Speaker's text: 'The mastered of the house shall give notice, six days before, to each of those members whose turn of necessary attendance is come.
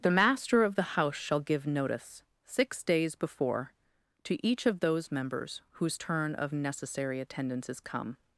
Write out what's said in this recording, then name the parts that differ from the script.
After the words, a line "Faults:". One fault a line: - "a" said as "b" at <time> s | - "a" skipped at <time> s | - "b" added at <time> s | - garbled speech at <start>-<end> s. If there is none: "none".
'The master of the house shall give notice, six days before, to each of those members whose turn of necessary attendance is come.
Faults:
- "mastered" said as "master" at 0.1 s